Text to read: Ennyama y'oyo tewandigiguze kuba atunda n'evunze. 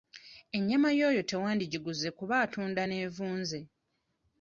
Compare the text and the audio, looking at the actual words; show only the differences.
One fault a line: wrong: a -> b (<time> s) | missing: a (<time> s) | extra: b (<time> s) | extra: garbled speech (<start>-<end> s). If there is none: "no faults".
no faults